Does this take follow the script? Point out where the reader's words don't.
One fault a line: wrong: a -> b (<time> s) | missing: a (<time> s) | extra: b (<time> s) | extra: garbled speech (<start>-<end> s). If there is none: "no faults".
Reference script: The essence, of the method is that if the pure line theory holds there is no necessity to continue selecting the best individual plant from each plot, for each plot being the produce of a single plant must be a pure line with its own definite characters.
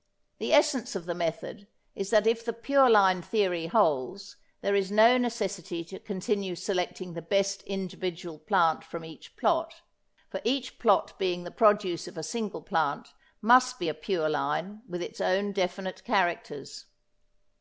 no faults